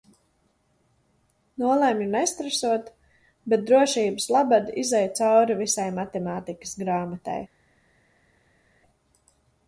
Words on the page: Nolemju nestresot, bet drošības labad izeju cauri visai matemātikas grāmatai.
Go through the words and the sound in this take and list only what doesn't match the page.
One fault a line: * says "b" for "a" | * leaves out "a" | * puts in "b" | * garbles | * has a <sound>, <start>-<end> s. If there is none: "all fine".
all fine